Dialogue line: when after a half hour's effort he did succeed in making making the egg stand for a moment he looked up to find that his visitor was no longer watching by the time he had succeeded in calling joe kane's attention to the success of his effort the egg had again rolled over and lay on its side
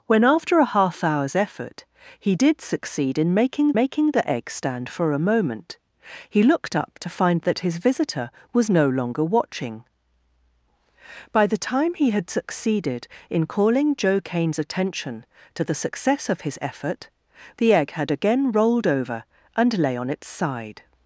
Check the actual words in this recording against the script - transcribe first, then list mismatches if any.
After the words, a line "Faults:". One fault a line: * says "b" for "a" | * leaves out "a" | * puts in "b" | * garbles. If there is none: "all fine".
when after a half hour's effort he did succeed in making making the egg stand for a moment he looked up to find that his visitor was no longer watching by the time he had succeeded in calling joe kane's attention to the success of his effort the egg had again rolled over and lay on its side
Faults:
all fine